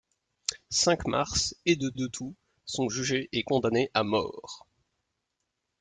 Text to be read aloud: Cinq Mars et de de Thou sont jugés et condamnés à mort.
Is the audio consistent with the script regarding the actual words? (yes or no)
yes